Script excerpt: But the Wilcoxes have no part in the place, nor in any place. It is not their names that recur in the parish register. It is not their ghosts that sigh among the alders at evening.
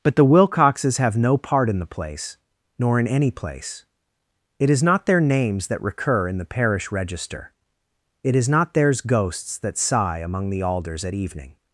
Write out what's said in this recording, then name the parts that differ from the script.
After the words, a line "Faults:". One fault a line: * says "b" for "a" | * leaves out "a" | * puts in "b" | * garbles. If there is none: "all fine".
But the Wilcoxes have no part in the place, nor in any place. It is not their names that recur in the parish register. It is not theirs ghosts that sigh among the alders at evening.
Faults:
* says "theirs" for "their"